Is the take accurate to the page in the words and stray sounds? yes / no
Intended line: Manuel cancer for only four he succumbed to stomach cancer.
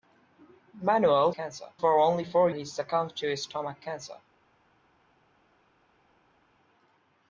yes